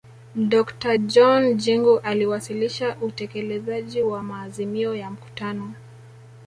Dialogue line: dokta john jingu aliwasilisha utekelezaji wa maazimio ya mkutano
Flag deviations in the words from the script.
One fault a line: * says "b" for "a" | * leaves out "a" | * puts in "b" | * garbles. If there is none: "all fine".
all fine